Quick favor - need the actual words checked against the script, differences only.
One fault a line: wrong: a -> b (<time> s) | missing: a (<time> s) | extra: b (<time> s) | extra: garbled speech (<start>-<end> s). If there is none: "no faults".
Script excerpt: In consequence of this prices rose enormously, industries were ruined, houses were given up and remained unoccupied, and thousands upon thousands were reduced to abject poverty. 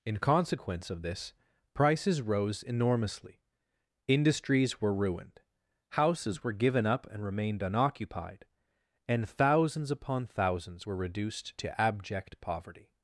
no faults